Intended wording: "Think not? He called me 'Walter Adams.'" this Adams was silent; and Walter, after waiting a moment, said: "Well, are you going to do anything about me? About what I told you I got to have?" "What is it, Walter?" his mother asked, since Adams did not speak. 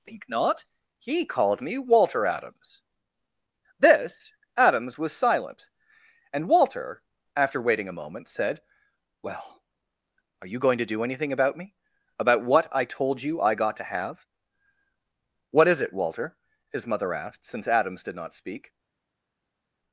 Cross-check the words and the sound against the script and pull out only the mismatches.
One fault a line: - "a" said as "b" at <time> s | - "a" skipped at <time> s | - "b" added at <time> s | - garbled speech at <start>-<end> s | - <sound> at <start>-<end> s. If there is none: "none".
none